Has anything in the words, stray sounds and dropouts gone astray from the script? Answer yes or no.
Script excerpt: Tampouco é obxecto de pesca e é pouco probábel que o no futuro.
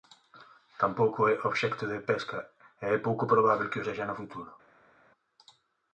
yes